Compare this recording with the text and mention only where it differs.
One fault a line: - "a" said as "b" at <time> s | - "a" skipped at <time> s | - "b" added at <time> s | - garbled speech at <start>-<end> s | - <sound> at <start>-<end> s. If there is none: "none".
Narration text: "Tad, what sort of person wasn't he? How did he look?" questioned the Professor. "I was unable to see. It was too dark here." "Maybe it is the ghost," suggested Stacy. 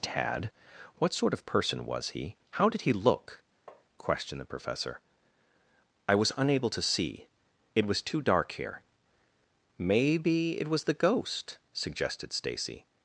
- "wasn't" said as "was" at 1.9 s
- tap at 3.7-3.8 s
- "is" said as "was" at 10.7 s